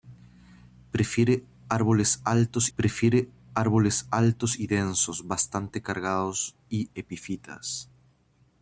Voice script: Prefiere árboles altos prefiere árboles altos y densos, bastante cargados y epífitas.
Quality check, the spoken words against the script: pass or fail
pass